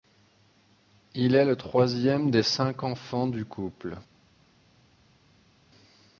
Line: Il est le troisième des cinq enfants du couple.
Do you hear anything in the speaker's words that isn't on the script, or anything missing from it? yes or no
no